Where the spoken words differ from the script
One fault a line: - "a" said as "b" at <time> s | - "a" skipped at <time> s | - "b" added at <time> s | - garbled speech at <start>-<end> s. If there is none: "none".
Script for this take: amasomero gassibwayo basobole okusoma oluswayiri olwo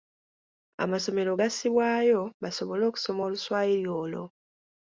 none